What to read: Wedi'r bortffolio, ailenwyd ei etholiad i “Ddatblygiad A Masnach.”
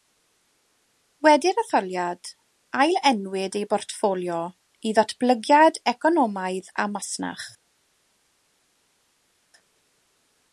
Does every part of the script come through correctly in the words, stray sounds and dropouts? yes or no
no